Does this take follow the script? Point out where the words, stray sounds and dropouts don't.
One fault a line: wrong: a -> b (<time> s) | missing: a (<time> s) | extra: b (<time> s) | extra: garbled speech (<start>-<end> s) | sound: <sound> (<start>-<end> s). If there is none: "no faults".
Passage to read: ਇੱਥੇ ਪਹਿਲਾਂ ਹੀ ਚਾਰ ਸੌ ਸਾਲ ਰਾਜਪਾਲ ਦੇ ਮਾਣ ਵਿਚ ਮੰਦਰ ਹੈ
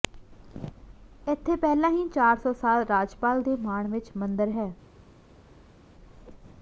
no faults